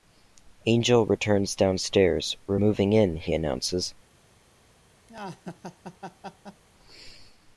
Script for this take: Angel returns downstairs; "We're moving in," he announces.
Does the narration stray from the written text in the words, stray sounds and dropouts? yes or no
yes